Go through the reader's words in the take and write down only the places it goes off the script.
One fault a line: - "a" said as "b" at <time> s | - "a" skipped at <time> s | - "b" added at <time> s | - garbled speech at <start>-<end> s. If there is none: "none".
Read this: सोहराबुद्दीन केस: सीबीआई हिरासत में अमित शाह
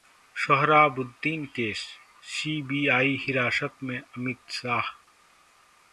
none